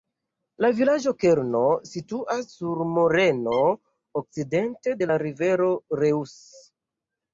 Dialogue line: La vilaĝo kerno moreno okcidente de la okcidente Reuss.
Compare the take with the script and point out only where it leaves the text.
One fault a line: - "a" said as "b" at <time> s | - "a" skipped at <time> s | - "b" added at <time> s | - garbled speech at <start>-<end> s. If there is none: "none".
- "situas sur" added at 1.9 s
- "okcidente" said as "rivero" at 5.3 s